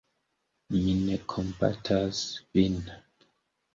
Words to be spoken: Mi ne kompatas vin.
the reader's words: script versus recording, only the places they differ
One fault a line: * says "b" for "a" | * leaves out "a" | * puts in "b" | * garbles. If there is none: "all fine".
all fine